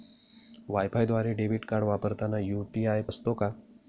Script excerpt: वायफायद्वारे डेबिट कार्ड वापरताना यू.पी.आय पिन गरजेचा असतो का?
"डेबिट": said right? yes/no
yes